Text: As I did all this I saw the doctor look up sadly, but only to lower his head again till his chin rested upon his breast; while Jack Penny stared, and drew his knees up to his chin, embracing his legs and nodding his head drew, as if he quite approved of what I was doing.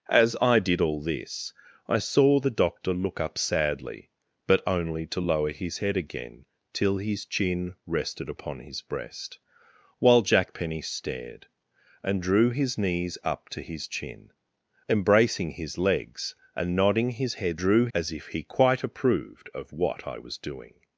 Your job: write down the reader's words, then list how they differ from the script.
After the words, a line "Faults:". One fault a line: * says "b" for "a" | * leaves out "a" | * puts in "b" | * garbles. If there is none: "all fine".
As I did all this I saw the doctor look up sadly, but only to lower his head again till his chin rested upon his breast; while Jack Penny stared, and drew his knees up to his chin, embracing his legs and nodding his head drew, as if he quite approved of what I was doing.
Faults:
all fine